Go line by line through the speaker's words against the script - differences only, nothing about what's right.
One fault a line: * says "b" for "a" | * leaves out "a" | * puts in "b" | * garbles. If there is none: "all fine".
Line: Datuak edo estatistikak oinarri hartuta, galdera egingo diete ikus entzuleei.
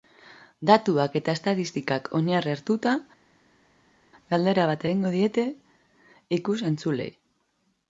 * says "eta" for "edo"
* puts in "bat"